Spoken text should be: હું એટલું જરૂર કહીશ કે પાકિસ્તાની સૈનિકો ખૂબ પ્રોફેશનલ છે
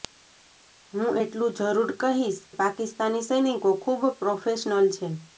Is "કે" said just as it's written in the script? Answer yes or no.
no